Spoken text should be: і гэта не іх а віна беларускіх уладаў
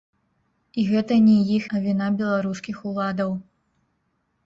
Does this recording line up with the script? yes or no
yes